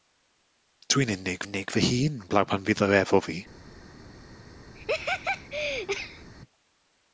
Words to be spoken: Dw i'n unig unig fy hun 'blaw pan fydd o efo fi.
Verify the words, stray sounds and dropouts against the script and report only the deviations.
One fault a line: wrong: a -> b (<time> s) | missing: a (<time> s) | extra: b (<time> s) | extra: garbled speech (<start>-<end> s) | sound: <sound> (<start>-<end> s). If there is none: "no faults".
sound: laugh (4.7-6.3 s)